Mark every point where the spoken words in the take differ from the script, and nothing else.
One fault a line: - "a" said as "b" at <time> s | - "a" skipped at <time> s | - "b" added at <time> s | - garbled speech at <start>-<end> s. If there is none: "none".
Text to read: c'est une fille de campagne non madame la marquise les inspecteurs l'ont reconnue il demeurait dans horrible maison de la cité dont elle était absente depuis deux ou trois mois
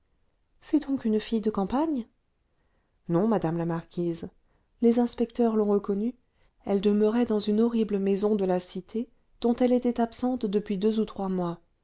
- "donc" added at 0.9 s
- "il" said as "elle" at 6.7 s
- "une" added at 7.4 s